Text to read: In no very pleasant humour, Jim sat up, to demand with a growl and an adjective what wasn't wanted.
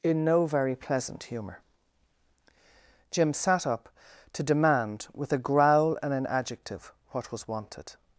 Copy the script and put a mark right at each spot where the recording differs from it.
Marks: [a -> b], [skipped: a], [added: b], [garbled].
In no very pleasant humour, Jim sat up, to demand with a growl and an adjective what [wasn't -> was] wanted.